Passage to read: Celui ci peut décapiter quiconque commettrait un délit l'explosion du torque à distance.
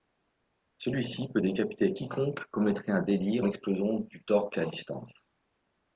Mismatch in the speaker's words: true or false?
false